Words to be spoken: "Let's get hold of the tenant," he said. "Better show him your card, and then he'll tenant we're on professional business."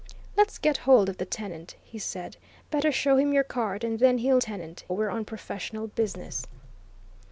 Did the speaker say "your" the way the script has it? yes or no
yes